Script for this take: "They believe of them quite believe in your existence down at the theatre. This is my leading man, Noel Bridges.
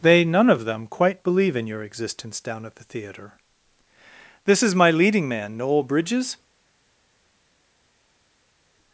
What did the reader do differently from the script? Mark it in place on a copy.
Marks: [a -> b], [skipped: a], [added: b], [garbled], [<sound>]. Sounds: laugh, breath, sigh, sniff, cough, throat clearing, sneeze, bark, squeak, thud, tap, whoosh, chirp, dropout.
"They [believe -> none] of them quite believe in your existence down at the theatre. This is my leading man, Noel Bridges.